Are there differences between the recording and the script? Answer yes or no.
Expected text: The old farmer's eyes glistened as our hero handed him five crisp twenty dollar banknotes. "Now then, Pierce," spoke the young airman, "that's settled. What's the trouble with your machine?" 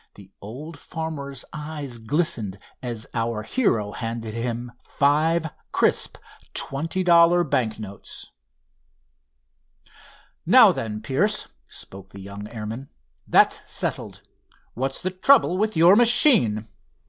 no